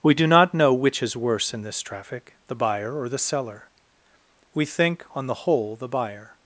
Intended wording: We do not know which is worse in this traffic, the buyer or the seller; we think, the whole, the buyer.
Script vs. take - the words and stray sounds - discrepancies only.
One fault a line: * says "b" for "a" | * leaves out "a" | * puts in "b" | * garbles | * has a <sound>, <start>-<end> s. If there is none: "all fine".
* puts in "on"